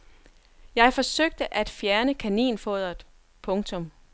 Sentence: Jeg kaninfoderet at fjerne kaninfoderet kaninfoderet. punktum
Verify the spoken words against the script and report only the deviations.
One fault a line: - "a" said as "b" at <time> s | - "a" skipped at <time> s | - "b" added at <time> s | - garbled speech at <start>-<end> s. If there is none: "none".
- "kaninfoderet" said as "forsøgte" at 0.9 s
- "kaninfoderet" skipped at 3.0 s